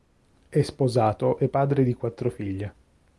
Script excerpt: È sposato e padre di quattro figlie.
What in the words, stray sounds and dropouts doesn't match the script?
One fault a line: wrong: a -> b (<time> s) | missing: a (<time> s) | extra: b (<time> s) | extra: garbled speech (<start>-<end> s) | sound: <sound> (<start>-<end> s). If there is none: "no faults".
no faults